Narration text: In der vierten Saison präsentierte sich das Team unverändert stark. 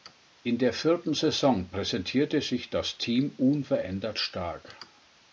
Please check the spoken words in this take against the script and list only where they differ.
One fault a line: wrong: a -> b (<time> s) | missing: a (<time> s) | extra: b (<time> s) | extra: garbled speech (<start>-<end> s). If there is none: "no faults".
no faults